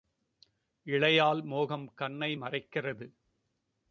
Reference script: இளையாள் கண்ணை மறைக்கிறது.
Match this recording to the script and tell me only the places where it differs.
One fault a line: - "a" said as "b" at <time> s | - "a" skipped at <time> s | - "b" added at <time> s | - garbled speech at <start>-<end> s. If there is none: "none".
- "மோகம்" added at 1.4 s